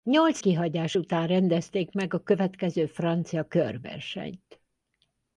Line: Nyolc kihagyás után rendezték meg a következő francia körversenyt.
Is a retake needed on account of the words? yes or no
no